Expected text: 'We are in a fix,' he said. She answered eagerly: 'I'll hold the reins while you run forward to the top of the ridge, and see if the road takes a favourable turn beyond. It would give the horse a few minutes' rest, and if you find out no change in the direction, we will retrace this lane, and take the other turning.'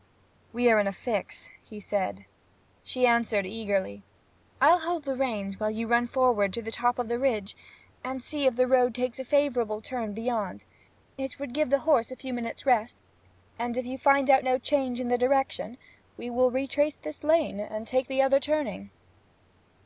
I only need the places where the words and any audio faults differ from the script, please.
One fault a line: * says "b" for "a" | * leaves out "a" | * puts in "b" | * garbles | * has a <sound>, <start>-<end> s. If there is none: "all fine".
all fine